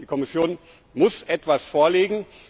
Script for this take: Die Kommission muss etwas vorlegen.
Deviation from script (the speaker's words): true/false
false